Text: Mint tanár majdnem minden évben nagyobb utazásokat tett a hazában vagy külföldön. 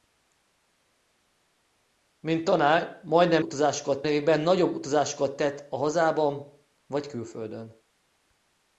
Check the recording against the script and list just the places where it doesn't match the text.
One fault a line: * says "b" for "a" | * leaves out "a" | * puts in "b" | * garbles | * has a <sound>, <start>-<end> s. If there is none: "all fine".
* says "utazásokat" for "minden"